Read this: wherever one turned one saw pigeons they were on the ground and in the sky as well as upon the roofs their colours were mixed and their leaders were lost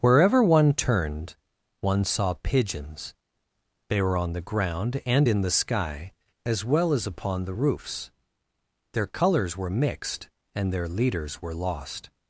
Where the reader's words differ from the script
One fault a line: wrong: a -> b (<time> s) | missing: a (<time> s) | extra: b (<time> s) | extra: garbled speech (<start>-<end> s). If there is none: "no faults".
no faults